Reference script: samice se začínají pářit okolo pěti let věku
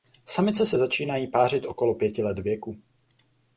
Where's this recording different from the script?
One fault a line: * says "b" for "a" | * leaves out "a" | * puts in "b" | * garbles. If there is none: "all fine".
all fine